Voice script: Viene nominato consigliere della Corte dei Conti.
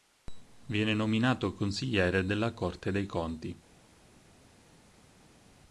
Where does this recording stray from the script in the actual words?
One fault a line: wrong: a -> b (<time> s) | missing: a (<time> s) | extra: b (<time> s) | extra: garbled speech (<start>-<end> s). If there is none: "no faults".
no faults